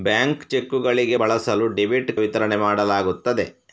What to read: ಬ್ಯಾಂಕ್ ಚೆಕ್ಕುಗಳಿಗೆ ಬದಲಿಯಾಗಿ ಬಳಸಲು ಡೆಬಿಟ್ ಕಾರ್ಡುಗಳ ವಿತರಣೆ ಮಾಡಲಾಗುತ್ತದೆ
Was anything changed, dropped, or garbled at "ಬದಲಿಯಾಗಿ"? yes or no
yes